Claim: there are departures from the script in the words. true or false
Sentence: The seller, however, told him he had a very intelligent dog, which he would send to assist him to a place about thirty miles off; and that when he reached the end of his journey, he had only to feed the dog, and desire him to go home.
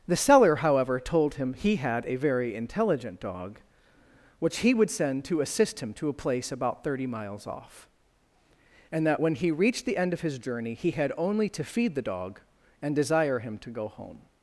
false